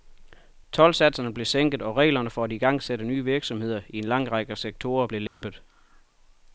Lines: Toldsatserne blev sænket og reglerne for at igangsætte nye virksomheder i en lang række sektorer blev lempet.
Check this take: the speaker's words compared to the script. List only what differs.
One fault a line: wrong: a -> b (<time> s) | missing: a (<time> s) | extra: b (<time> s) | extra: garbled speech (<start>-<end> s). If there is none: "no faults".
no faults